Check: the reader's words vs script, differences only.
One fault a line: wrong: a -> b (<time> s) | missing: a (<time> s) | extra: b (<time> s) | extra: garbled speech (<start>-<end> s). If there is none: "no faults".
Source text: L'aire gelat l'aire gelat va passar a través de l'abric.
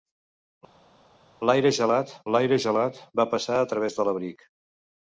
no faults